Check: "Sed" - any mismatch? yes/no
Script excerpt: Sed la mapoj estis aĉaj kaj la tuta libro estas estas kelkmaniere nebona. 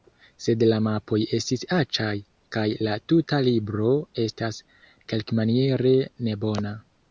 no